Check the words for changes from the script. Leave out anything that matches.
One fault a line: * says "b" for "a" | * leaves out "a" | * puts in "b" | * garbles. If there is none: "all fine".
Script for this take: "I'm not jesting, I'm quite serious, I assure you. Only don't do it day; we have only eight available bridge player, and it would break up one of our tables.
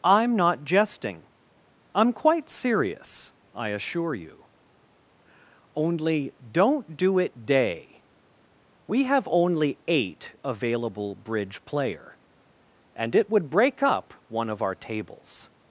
all fine